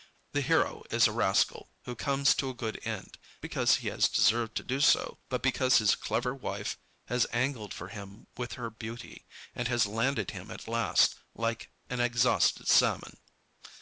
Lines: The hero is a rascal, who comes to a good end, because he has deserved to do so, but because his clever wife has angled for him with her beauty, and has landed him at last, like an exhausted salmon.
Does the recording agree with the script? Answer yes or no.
yes